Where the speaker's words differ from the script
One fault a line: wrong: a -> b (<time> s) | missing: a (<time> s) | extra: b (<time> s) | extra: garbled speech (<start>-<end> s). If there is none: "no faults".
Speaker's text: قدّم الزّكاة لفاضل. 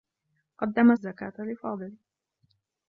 no faults